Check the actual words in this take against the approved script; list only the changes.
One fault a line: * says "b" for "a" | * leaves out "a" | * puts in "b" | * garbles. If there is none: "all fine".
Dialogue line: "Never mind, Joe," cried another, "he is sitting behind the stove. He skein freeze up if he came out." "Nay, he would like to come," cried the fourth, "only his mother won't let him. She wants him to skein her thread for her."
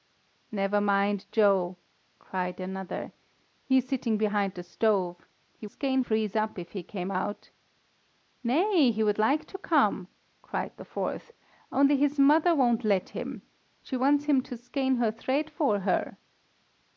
all fine